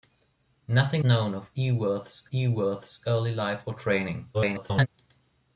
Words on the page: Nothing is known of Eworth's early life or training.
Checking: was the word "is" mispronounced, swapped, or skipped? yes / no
yes